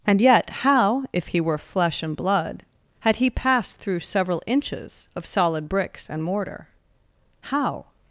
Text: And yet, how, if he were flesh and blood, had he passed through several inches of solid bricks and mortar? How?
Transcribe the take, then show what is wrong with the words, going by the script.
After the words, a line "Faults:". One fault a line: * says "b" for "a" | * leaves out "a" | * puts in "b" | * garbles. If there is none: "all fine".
And yet, how, if he were flesh and blood, had he passed through several inches of solid bricks and mortar? How?
Faults:
all fine